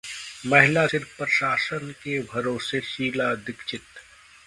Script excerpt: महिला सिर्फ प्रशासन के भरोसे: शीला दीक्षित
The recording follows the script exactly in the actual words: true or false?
true